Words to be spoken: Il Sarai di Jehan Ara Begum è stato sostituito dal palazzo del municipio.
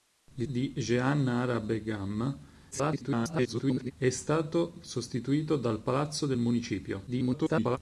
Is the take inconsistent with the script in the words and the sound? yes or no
yes